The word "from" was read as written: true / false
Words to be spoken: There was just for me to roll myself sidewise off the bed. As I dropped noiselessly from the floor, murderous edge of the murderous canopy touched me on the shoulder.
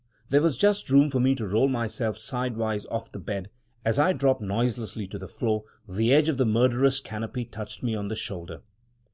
false